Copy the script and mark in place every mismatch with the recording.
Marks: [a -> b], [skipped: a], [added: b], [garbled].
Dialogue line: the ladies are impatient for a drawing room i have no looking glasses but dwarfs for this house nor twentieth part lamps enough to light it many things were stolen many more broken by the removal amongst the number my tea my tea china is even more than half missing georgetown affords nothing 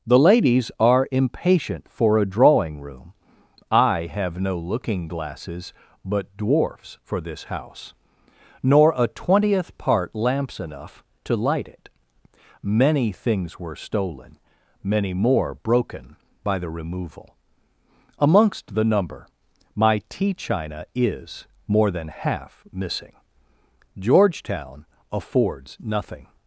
the ladies are impatient for a drawing room i have no looking glasses but dwarfs for this house nor [added: a] twentieth part lamps enough to light it many things were stolen many more broken by the removal amongst the number my tea [skipped: my tea] china is [skipped: even] more than half missing georgetown affords nothing